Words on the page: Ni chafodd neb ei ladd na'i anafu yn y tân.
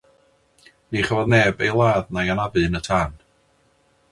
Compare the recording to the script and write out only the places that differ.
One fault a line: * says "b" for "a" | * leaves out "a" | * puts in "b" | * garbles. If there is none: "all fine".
all fine